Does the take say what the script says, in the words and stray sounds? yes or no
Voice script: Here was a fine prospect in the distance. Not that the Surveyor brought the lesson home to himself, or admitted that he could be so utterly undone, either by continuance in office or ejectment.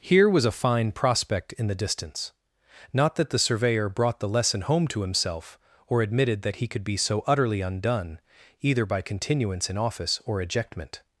yes